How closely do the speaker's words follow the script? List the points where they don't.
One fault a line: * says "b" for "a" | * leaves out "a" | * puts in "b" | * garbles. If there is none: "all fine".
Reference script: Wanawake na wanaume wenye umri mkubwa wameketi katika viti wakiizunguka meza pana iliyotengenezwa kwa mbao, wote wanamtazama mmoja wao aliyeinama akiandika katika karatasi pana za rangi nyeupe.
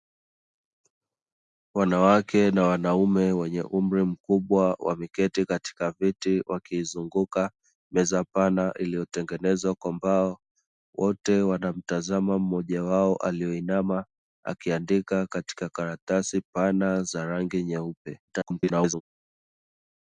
* garbles